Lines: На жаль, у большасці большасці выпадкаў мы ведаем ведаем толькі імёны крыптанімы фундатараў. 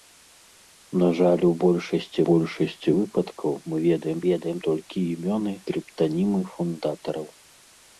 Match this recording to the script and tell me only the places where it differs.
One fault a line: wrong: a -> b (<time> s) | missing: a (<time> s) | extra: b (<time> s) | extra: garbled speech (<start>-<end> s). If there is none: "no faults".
no faults